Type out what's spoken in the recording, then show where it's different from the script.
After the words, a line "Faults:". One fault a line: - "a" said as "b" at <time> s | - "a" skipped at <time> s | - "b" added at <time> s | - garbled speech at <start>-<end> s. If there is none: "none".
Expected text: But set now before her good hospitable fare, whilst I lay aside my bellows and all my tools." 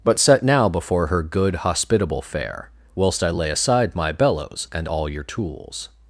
But set now before her good hospitable fare, whilst I lay aside my bellows and all your tools."
Faults:
- "my" said as "your" at 5.1 s